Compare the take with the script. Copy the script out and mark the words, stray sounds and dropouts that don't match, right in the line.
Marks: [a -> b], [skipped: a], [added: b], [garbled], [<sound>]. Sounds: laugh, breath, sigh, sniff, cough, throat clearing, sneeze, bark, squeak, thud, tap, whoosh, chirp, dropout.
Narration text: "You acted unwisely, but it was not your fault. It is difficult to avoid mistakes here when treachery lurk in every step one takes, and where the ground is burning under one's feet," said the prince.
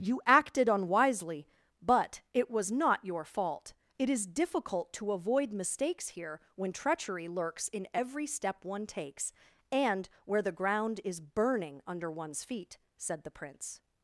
"You acted unwisely, but it was not your fault. It is difficult to avoid mistakes here when treachery [lurk -> lurks] in every step one takes, and where the ground is burning under one's feet," said the prince.